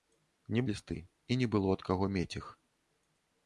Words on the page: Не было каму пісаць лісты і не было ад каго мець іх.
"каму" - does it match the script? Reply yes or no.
no